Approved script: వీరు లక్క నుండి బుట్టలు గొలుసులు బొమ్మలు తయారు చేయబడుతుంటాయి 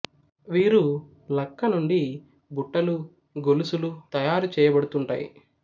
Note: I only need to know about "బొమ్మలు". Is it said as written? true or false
false